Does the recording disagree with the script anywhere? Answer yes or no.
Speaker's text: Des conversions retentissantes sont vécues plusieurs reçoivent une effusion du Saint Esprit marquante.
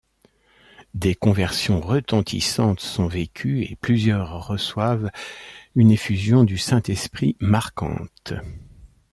yes